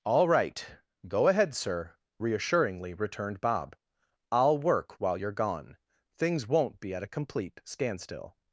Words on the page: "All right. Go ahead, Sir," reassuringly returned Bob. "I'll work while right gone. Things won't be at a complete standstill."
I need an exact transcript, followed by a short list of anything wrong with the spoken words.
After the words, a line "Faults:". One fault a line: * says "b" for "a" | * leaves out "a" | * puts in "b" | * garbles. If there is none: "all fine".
"All right. Go ahead, Sir," reassuringly returned Bob. "I'll work while you're gone. Things won't be at a complete standstill."
Faults:
* says "you're" for "right"